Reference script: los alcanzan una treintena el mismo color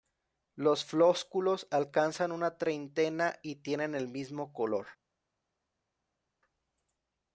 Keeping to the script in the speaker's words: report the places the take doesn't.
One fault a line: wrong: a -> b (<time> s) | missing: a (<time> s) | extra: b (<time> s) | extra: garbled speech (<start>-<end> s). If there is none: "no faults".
extra: flósculos (0.8 s)
extra: y tienen (3.4 s)